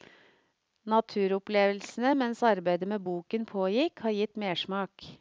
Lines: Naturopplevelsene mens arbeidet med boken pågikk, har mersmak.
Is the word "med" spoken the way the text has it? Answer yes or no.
yes